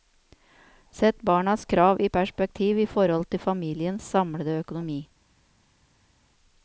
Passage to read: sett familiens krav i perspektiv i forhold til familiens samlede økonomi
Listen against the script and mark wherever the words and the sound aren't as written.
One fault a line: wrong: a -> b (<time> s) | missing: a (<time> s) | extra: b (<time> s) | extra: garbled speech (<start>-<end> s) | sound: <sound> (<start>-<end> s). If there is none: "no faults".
wrong: familiens -> barnas (1.2 s)